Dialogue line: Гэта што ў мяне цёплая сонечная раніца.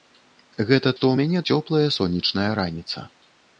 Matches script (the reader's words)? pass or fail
pass